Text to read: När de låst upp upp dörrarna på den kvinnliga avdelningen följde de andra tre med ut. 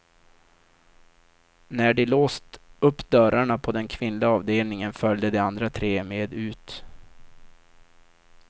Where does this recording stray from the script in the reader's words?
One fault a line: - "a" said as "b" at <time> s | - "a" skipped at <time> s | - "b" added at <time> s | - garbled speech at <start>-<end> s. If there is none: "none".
- "upp" skipped at 3.1 s